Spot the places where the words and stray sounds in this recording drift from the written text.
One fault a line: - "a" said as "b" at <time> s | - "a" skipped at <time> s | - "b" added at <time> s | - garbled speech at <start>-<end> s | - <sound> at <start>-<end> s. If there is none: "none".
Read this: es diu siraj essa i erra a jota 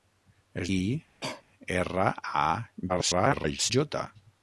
- "diu siraj essa" skipped at 0.7 s
- cough at 1.2-1.4 s
- garbled speech at 2.9-3.7 s